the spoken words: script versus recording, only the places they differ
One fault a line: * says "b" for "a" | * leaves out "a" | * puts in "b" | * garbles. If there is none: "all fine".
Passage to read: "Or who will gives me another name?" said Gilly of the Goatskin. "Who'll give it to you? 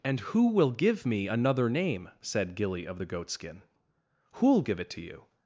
* says "And" for "Or"
* says "give" for "gives"